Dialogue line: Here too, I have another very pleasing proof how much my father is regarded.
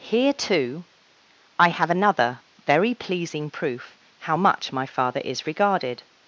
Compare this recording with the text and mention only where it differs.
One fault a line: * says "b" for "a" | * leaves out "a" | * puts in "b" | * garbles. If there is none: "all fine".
all fine